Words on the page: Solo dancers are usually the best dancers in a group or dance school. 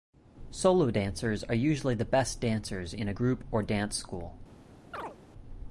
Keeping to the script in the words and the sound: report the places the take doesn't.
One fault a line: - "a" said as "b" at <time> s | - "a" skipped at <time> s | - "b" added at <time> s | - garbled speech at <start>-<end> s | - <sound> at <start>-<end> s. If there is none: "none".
- chirp at 4.9-5.2 s